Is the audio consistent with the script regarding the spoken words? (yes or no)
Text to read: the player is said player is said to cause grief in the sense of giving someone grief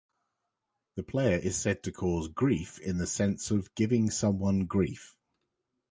no